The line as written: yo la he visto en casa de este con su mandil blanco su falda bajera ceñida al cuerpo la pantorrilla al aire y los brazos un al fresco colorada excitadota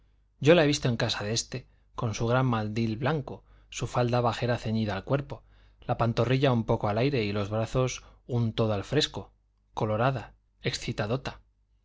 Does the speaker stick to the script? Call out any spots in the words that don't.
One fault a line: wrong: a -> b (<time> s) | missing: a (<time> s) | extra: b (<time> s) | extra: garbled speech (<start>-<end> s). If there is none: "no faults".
extra: gran (2.2 s)
extra: un poco (6.5 s)
extra: todo (8.5 s)